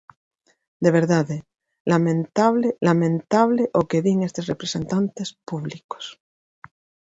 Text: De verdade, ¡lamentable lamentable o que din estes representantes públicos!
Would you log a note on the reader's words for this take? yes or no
no